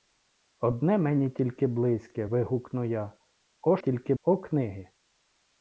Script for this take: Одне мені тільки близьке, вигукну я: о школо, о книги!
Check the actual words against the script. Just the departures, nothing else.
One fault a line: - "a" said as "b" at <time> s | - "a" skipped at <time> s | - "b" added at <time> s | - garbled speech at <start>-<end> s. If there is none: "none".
- "школо" said as "тільки" at 3.8 s